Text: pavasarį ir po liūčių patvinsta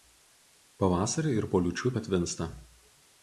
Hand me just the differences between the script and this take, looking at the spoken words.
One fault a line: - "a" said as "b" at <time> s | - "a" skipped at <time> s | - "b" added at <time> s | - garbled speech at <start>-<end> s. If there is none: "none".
none